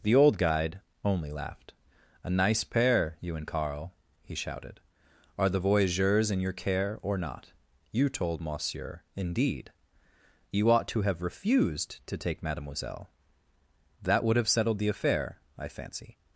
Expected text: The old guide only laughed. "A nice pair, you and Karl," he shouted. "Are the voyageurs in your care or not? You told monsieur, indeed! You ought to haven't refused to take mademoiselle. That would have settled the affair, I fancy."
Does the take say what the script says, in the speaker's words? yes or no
no